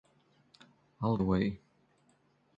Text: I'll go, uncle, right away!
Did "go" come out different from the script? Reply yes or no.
yes